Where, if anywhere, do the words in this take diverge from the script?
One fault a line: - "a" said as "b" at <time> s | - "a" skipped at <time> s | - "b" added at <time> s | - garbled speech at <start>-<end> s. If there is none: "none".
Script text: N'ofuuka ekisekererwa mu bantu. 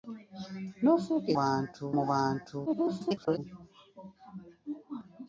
- "ekisekererwa" said as "bantu" at 1.4 s
- garbled speech at 2.7-3.4 s